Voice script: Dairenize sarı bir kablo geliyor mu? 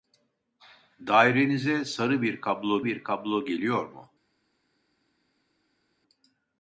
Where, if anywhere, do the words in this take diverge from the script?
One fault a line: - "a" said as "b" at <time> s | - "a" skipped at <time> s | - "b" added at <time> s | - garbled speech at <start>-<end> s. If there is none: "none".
- "bir kablo" added at 2.8 s